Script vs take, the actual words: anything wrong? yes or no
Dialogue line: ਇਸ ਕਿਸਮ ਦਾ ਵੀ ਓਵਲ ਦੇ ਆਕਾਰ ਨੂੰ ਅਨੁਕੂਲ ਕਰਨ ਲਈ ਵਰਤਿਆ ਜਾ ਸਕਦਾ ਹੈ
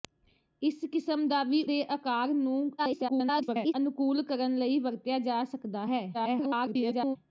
yes